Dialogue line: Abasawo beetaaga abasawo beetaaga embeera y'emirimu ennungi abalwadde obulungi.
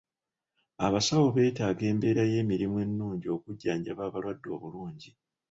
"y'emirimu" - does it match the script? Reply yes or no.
yes